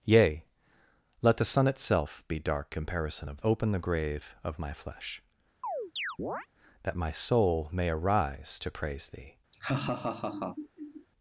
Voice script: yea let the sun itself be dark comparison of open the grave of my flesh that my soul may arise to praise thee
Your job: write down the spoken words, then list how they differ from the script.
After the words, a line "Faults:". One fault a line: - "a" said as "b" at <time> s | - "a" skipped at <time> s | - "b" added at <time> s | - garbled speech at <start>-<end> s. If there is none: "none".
yea let the sun itself be dark comparison of open the grave of my flesh that my soul may arise to praise thee
Faults:
none